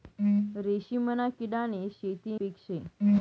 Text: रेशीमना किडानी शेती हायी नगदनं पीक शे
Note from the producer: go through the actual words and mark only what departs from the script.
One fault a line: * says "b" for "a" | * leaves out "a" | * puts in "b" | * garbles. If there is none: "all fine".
* leaves out "हायी नगदनं"